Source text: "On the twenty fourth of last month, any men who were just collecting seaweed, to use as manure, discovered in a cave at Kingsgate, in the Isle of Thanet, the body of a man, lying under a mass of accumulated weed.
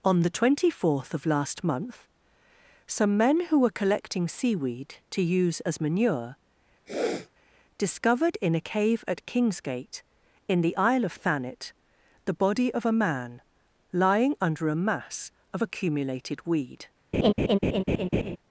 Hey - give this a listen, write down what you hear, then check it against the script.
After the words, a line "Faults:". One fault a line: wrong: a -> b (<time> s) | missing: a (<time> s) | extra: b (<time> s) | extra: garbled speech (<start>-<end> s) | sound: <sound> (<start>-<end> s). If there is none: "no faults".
"On the twenty fourth of last month, some men who were collecting seaweed, to use as manure, discovered in a cave at Kingsgate, in the Isle of Thanet, the body of a man, lying under a mass of accumulated weed.
Faults:
wrong: any -> some (2.9 s)
missing: just (3.8 s)
sound: sniff (6.9-7.3 s)
sound: laugh (17.1-18.4 s)